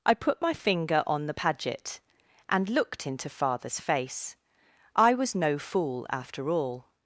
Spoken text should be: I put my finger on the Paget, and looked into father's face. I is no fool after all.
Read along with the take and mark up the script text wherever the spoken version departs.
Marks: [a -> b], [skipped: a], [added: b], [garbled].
I put my finger on the Paget, and looked into father's face. I [is -> was] no fool after all.